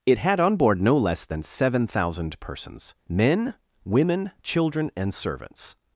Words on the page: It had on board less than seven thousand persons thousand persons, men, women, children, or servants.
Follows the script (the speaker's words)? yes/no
no